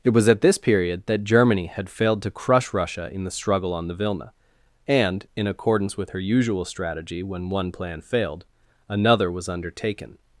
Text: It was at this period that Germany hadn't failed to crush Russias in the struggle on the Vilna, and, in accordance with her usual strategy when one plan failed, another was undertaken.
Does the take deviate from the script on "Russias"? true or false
true